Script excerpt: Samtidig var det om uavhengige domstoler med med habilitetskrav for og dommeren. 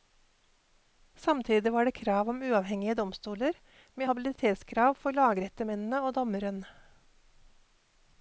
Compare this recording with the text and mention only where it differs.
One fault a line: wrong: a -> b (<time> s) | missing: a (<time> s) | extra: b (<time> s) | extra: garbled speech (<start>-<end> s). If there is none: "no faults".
extra: krav (2.0 s)
missing: med (4.1 s)
extra: lagrettemennene (5.2 s)